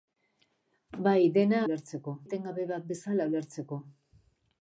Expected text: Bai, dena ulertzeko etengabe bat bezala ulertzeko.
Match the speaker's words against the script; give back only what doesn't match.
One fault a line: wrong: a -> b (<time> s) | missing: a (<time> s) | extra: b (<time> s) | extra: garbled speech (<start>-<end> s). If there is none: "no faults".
no faults